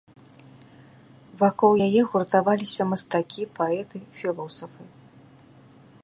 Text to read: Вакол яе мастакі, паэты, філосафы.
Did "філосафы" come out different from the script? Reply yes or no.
no